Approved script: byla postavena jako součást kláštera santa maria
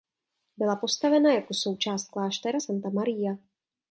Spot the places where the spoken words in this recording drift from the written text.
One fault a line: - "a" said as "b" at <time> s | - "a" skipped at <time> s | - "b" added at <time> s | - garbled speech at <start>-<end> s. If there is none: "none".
none